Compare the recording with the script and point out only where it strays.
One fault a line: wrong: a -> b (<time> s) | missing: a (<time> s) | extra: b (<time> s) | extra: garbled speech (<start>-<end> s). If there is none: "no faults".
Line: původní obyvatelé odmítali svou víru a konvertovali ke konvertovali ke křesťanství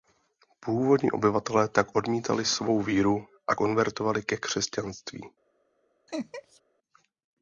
extra: tak (1.7 s)
missing: konvertovali ke (4.4 s)